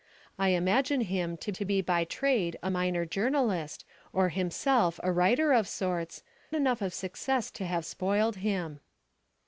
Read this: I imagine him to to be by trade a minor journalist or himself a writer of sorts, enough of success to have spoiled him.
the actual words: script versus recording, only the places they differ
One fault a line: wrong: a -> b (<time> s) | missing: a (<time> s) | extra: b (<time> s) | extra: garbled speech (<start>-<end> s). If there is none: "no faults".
no faults